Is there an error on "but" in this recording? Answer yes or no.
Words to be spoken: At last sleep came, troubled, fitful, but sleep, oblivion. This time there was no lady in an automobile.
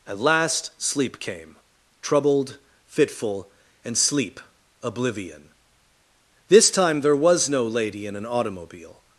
yes